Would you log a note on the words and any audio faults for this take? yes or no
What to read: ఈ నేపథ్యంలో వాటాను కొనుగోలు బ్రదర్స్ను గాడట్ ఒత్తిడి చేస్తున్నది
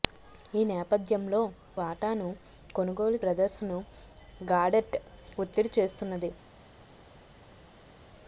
no